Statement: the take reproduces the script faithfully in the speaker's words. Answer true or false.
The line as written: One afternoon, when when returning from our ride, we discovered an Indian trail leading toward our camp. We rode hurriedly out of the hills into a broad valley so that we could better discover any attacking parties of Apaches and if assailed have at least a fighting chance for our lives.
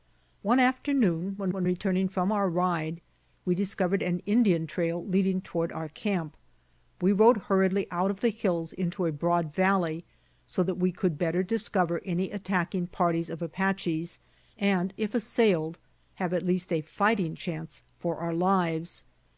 true